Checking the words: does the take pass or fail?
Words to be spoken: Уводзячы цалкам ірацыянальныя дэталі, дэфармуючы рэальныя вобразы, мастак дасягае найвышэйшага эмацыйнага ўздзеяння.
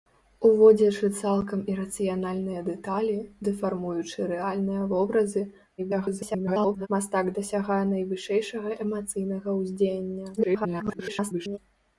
fail